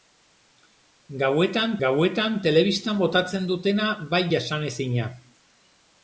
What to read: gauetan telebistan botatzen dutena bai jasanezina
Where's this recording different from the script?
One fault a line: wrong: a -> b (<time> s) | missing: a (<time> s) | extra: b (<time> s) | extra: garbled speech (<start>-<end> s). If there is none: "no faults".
extra: gauetan (1.8 s)